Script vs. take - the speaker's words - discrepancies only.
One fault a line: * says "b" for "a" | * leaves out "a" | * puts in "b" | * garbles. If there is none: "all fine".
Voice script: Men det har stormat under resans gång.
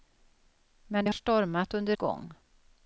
* leaves out "har"
* leaves out "resans"